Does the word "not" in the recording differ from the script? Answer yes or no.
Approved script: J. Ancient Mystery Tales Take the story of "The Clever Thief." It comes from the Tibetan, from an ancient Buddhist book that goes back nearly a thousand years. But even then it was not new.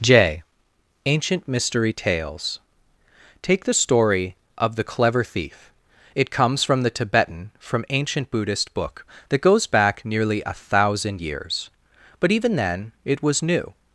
yes